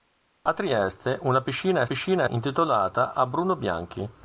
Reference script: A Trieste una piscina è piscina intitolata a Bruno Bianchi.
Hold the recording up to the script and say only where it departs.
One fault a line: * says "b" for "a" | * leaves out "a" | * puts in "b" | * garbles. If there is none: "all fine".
all fine